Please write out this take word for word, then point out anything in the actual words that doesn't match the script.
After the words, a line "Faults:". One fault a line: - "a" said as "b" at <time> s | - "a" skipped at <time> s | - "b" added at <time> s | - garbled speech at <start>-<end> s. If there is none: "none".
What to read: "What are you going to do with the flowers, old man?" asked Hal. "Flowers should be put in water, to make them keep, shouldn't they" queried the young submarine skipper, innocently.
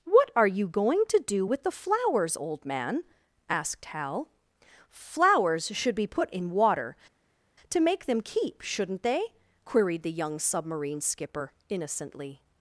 "What are you going to do with the flowers, old man?" asked Hal. "Flowers should be put in water, to make them keep, shouldn't they" queried the young submarine skipper, innocently.
Faults:
none